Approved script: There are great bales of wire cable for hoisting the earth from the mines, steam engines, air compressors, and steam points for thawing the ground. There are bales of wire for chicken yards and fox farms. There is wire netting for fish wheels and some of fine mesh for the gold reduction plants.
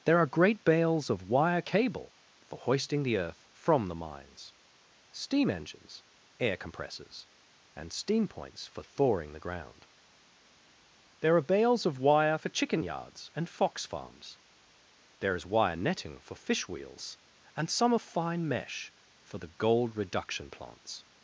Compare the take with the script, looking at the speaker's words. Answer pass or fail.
pass